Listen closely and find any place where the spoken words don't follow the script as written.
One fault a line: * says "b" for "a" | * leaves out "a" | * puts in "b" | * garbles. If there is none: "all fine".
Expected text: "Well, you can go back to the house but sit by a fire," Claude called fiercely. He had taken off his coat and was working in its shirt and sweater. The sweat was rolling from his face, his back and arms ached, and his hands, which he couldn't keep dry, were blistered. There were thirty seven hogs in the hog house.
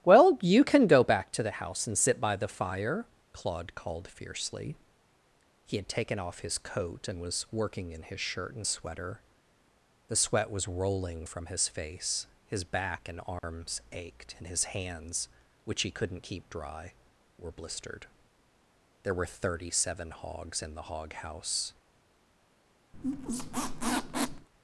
* says "and" for "but"
* says "the" for "a"
* says "his" for "its"